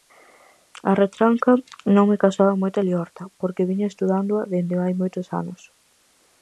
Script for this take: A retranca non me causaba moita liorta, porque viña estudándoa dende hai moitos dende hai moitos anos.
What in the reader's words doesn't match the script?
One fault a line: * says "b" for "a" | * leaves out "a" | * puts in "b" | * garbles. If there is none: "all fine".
* leaves out "dende hai moitos"